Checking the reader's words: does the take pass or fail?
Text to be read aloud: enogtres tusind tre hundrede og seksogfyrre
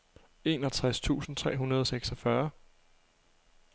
pass